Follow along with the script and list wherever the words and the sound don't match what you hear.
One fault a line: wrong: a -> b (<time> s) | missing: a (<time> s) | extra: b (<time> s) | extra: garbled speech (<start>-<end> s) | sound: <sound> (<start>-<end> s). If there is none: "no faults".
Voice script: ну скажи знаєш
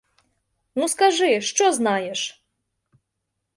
extra: що (1.4 s)